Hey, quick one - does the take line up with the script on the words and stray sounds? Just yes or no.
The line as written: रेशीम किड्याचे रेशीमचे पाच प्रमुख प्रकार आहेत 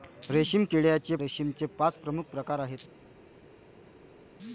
yes